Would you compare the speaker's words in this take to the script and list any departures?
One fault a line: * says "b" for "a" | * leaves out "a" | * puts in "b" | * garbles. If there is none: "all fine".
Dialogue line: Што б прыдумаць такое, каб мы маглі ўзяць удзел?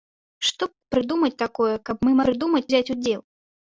* puts in "б"
* says "прыдумаць" for "маглі"